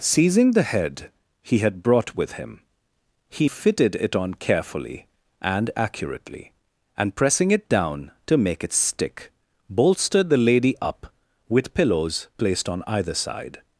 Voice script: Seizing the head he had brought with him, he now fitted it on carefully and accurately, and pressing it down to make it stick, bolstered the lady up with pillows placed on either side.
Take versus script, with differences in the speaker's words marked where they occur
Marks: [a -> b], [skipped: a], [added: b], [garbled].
Seizing the head he had brought with him, he [skipped: now] fitted it on carefully and accurately, and pressing it down to make it stick, bolstered the lady up with pillows placed on either side.